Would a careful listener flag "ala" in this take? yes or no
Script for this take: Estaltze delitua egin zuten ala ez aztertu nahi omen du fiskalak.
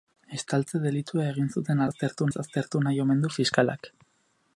yes